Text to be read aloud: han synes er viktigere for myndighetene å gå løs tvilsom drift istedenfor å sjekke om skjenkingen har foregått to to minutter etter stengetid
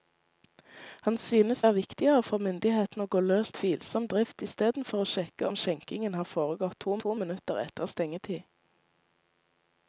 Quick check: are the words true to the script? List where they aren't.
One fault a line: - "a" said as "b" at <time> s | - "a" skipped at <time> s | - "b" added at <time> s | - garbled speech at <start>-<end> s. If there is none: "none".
none